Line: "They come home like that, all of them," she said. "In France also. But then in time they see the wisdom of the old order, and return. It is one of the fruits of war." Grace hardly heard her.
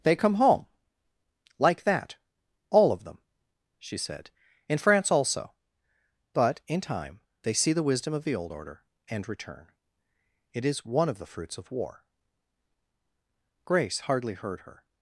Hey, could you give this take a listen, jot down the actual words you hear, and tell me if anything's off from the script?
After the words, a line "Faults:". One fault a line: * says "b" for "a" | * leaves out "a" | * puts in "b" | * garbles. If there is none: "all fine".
"They come home like that, all of them," she said. "In France also. But in time they see the wisdom of the old order, and return. It is one of the fruits of war." Grace hardly heard her.
Faults:
* leaves out "then"